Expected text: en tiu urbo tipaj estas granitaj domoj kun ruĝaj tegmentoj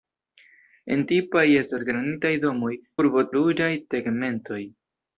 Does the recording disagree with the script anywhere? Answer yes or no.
yes